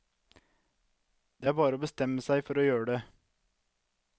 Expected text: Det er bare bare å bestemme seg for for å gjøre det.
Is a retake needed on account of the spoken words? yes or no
yes